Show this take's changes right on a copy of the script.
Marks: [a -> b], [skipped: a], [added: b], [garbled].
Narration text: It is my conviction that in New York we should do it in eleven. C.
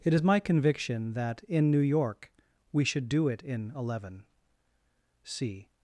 It is my conviction that in New York we should do it in eleven. C.